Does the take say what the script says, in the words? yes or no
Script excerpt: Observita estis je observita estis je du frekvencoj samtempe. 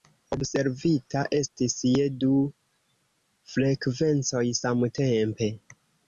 no